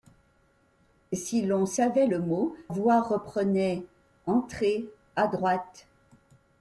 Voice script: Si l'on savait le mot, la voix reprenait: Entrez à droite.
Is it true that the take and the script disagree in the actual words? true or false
true